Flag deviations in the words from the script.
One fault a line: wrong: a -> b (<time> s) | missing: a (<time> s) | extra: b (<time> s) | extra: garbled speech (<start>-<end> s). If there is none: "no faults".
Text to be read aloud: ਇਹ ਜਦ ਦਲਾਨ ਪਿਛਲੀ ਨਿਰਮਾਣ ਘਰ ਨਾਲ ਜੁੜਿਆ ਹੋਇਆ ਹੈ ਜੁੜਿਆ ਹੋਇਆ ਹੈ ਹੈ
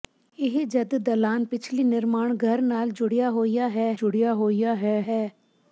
no faults